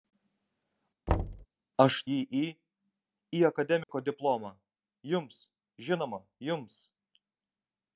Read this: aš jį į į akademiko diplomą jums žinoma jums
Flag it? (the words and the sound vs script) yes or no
yes